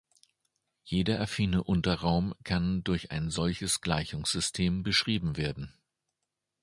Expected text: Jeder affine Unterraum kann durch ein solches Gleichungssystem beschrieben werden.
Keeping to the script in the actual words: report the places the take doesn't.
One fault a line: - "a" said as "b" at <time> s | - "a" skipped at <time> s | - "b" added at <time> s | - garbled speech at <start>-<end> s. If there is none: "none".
none